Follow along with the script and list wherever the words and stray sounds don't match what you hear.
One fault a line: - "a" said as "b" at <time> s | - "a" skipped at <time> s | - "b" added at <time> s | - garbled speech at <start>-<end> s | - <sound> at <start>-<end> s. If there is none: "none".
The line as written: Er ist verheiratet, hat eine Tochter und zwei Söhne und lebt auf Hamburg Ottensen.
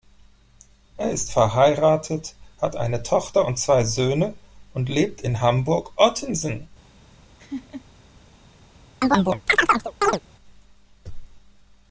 - "auf" said as "in" at 5.2 s
- laugh at 7.4-7.9 s
- chirp at 9.0-10.2 s